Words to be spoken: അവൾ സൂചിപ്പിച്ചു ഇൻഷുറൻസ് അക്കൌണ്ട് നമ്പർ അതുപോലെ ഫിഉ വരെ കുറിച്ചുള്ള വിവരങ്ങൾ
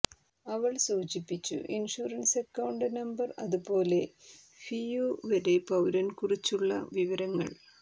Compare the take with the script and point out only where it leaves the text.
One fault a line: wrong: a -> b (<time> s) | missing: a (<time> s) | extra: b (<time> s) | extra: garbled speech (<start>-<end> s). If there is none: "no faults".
extra: പൌരൻ (5.7 s)